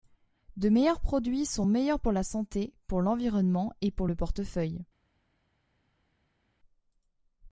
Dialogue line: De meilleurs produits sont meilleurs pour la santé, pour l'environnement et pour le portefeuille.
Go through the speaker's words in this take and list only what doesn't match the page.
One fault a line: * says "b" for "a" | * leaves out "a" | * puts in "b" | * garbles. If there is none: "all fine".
all fine